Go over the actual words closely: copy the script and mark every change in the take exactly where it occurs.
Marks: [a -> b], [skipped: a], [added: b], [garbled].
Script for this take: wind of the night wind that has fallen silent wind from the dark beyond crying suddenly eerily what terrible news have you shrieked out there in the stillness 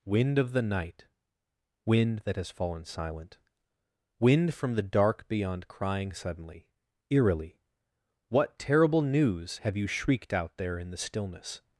wind of the night wind that has fallen silent wind from the dark beyond crying suddenly eerily what terrible news have you shrieked out there in the stillness